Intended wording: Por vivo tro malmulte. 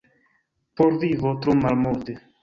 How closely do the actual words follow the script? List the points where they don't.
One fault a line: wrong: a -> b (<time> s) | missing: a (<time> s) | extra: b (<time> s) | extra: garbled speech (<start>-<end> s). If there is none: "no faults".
no faults